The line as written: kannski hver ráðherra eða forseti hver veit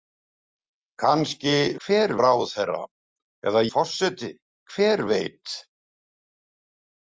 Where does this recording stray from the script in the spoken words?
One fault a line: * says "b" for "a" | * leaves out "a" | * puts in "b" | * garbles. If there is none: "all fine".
all fine